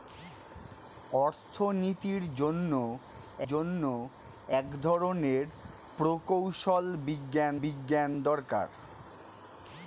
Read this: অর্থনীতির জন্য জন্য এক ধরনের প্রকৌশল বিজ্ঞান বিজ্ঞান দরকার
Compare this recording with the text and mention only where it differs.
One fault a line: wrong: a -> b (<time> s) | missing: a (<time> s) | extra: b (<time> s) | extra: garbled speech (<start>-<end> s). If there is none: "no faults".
no faults